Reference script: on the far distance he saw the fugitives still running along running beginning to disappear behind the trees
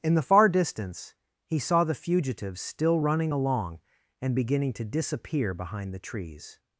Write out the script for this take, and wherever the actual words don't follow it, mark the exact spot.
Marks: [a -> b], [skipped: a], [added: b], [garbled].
[on -> in] the far distance he saw the fugitives still running along [running -> and] beginning to disappear behind the trees